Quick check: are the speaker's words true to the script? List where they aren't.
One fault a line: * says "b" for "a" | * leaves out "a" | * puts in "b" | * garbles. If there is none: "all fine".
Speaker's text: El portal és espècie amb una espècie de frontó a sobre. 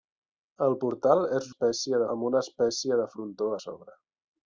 all fine